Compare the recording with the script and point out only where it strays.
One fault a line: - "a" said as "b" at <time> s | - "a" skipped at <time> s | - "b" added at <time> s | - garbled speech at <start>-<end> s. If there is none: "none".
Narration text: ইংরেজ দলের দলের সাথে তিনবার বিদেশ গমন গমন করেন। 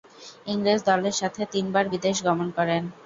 - "দলের" skipped at 1.1 s
- "গমন" skipped at 2.5 s